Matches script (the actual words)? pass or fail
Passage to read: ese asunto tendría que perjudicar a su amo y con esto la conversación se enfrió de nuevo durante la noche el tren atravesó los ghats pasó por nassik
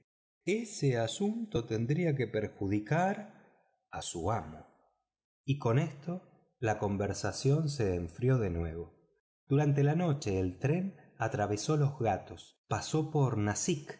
pass